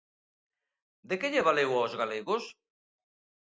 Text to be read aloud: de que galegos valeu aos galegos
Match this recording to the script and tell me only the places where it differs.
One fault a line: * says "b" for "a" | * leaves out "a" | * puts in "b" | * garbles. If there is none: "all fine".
* says "lle" for "galegos"